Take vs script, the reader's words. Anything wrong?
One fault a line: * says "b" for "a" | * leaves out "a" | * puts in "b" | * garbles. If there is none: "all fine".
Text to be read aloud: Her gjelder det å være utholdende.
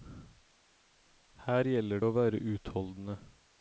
* leaves out "det"